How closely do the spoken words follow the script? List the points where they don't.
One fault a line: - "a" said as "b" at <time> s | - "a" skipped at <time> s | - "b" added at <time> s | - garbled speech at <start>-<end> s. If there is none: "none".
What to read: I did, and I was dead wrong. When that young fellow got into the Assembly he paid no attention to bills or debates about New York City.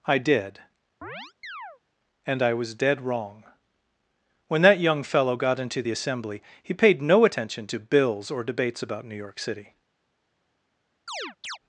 none